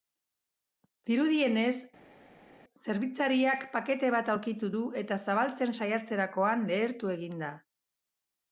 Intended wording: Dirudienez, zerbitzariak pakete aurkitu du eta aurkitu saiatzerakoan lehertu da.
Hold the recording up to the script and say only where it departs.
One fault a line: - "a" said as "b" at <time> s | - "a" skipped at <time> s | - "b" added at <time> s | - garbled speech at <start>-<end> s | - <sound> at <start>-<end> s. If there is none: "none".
- "bat" added at 4.2 s
- "aurkitu" said as "zabaltzen" at 5.3 s
- "egin" added at 7.2 s